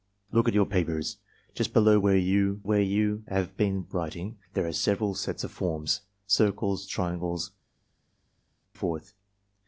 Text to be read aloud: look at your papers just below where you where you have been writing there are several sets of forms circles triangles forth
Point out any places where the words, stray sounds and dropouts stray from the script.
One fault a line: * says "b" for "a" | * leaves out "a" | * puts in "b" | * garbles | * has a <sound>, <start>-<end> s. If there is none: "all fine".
all fine